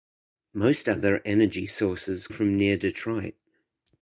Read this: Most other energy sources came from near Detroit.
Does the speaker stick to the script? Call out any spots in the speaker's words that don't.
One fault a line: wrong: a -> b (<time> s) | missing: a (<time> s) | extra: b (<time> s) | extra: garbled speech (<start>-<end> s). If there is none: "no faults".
missing: came (2.3 s)